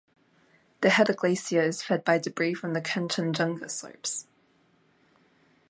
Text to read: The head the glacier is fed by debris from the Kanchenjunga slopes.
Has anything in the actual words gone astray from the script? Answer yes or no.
no